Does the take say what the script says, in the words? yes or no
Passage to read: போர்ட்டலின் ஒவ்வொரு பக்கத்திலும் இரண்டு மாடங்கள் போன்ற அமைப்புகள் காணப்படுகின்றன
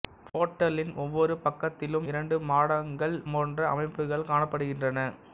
yes